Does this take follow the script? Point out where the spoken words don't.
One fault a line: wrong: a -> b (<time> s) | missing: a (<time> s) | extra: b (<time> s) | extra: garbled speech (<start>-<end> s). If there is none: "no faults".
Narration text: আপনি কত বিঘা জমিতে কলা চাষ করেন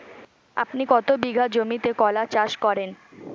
no faults